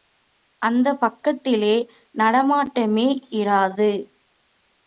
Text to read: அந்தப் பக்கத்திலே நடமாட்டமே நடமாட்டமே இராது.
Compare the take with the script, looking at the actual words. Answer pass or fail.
fail